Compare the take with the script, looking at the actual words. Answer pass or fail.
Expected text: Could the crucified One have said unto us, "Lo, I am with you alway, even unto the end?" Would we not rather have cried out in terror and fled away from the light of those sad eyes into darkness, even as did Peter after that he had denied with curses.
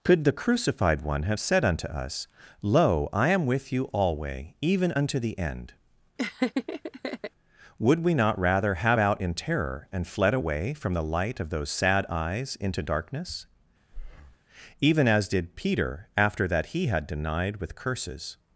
fail